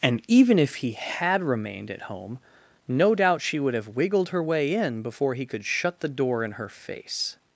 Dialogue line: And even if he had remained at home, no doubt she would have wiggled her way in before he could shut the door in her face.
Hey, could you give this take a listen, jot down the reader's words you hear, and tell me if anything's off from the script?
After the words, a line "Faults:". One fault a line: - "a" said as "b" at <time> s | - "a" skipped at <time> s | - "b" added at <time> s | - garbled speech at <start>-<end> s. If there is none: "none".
And even if he had remained at home, no doubt she would have wiggled her way in before he could shut the door in her face.
Faults:
none